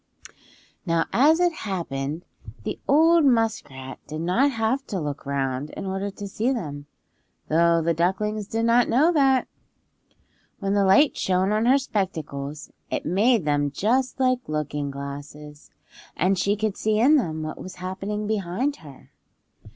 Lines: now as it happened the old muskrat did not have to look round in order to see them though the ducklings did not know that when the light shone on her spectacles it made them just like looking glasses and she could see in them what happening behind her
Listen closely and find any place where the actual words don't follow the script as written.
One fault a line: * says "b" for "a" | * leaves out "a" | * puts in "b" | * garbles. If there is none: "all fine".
* puts in "was"